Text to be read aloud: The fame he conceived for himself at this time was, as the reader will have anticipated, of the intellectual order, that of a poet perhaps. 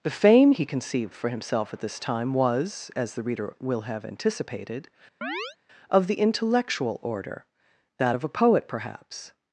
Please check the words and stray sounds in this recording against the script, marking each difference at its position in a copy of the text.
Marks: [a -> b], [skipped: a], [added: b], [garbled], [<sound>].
The fame he conceived for himself at this time was, as the reader will have anticipated, [chirp] of the intellectual order, that of a poet perhaps.